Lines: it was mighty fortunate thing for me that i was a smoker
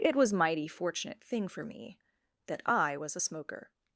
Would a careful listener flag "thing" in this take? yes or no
no